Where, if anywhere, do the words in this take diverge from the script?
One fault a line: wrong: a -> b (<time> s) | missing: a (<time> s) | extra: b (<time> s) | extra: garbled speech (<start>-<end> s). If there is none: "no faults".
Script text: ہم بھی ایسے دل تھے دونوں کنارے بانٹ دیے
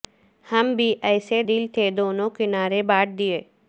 no faults